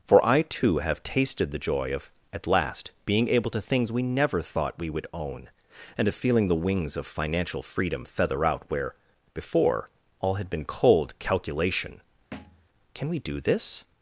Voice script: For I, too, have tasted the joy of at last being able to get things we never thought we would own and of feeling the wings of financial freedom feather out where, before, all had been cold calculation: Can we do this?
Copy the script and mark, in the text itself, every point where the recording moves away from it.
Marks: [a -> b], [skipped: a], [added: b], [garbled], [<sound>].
For I, too, have tasted the joy of at last being able to [skipped: get] things we never thought we would own and of feeling the wings of financial freedom feather out where, before, all had been cold calculation: [thud] Can we do this?